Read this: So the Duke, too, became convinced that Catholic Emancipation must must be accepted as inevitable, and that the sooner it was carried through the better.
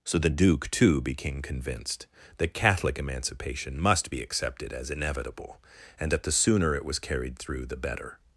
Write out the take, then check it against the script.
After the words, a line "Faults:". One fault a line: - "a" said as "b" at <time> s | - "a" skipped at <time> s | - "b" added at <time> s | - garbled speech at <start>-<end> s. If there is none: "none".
So the Duke, too, became convinced that Catholic Emancipation must be accepted as inevitable, and that the sooner it was carried through the better.
Faults:
- "must" skipped at 4.1 s